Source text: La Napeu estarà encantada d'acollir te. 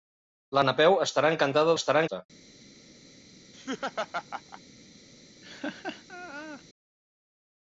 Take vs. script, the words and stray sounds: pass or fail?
fail